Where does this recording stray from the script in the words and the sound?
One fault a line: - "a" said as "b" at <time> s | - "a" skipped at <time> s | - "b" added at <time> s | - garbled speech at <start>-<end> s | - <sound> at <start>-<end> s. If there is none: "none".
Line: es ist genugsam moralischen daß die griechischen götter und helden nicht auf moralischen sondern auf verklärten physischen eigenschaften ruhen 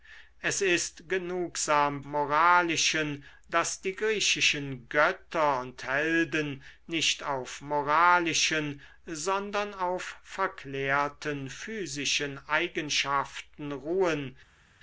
none